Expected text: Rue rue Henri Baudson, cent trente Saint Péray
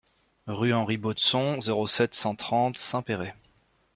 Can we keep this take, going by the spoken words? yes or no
no